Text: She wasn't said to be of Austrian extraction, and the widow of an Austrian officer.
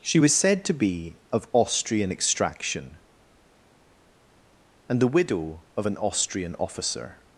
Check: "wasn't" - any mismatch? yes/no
yes